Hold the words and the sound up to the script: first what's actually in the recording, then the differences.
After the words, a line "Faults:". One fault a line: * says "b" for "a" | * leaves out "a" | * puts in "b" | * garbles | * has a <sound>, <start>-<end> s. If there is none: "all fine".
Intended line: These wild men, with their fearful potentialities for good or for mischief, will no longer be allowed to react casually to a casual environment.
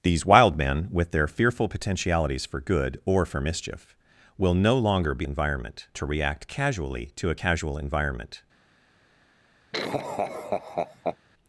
These wild men, with their fearful potentialities for good or for mischief, will no longer be environment to react casually to a casual environment.
Faults:
* says "environment" for "allowed"
* has a laugh, 9.7-11.2 s